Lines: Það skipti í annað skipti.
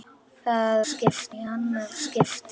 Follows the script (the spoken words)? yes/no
yes